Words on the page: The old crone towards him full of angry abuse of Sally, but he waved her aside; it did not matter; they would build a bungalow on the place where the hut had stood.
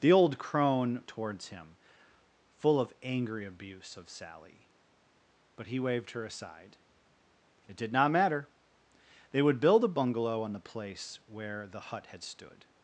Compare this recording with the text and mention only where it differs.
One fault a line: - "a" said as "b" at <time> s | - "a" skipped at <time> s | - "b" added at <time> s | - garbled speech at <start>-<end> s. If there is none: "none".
none